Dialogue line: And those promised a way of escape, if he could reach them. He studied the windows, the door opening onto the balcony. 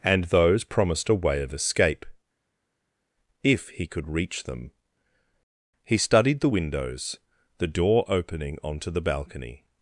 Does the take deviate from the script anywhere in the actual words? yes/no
no